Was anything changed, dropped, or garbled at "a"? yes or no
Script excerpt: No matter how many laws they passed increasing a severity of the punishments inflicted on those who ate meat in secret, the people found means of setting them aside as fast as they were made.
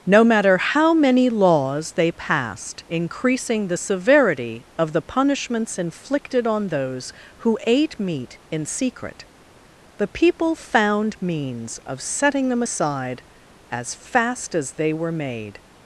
yes